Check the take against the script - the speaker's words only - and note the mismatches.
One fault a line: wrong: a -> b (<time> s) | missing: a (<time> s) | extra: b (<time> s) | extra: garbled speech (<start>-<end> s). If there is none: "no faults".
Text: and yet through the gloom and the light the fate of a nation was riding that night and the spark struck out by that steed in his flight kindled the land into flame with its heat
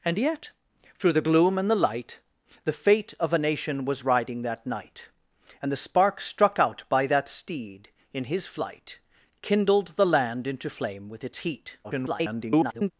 extra: garbled speech (11.8-12.9 s)